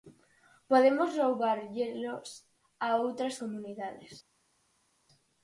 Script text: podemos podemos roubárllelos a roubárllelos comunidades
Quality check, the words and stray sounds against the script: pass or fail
fail